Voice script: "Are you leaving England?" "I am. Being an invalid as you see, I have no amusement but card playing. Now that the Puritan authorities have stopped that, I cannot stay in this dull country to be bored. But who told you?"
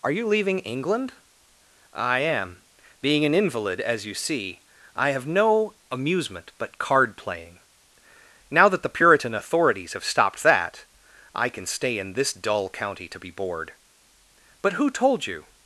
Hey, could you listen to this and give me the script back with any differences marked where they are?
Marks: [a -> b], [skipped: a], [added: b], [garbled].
"Are you leaving England?" "I am. Being an invalid as you see, I have no amusement but card playing. Now that the Puritan authorities have stopped that, I [cannot -> can] stay in this dull [country -> county] to be bored. But who told you?"